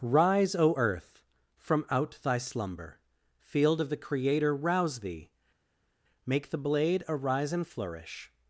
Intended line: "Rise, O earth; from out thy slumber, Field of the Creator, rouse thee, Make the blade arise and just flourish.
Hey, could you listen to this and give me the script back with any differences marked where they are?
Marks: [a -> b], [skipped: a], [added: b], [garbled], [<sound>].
"Rise, O earth; from out thy slumber, Field of the Creator, rouse thee, Make the blade arise and [skipped: just] flourish.